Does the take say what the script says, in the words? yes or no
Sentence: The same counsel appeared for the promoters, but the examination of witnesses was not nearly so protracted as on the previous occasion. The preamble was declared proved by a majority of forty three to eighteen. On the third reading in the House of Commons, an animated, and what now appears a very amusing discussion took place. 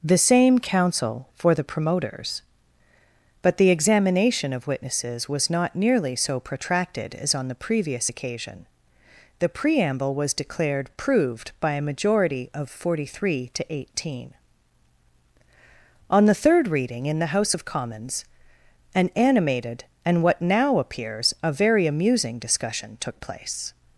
no